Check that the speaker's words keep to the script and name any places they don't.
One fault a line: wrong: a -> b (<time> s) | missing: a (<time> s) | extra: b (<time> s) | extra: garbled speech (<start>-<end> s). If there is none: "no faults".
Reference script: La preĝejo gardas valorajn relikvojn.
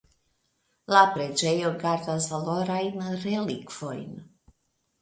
no faults